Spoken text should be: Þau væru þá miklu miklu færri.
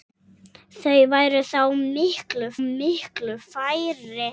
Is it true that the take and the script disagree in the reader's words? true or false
false